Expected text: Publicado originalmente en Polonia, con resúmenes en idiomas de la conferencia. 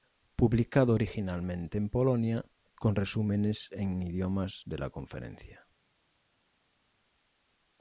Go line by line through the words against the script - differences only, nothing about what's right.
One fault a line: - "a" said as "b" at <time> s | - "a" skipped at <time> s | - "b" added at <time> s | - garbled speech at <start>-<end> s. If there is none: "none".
none